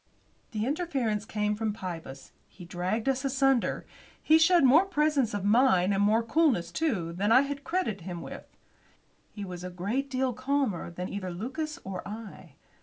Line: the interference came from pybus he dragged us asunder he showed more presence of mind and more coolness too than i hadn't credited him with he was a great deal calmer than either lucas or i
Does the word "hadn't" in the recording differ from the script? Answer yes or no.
yes